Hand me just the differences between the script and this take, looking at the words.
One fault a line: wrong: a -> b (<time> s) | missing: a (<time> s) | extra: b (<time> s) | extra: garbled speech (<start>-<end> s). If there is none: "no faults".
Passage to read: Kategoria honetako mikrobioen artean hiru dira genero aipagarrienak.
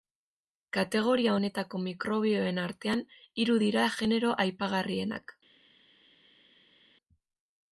no faults